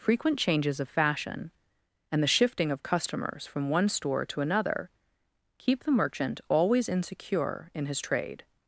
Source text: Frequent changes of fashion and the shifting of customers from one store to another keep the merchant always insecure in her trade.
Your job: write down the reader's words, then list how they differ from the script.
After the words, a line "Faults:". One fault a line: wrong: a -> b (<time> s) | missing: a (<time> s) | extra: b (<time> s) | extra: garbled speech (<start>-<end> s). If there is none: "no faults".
Frequent changes of fashion and the shifting of customers from one store to another keep the merchant always insecure in his trade.
Faults:
wrong: her -> his (7.8 s)